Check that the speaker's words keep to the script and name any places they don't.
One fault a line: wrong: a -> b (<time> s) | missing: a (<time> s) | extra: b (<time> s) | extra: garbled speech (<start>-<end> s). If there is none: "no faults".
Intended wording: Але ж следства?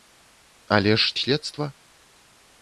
no faults